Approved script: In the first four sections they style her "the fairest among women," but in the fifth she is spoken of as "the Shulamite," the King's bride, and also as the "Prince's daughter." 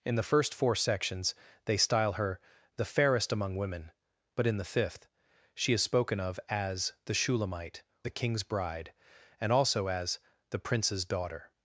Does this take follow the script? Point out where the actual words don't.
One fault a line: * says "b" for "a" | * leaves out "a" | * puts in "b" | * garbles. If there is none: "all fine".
all fine